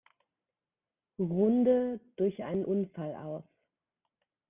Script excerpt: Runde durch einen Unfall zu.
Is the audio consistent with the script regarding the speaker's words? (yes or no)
no